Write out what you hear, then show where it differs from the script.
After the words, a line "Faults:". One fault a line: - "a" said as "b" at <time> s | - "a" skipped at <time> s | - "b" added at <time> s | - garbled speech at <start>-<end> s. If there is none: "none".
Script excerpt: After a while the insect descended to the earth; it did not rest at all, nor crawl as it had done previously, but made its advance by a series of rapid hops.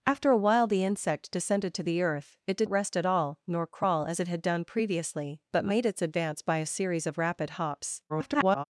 After a while the insect descended to the earth; it did rest at all, nor crawl as it had done previously, but made its advance by a series of rapid hops. [garbled]
Faults:
- "not" skipped at 2.7 s
- garbled speech at 8.1-8.6 s